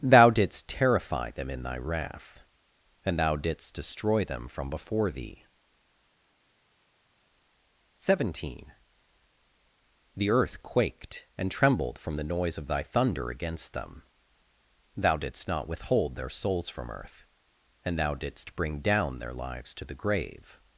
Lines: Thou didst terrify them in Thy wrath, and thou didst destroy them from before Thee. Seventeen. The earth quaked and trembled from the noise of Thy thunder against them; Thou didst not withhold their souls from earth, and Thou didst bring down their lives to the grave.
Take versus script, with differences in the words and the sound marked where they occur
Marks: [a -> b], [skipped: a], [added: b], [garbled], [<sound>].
Thou didst terrify them in Thy wrath, and thou didst destroy them from before Thee. Seventeen. The earth quaked and trembled from the noise of Thy thunder against them; Thou didst not withhold their souls from earth, and Thou didst bring down their lives to the grave.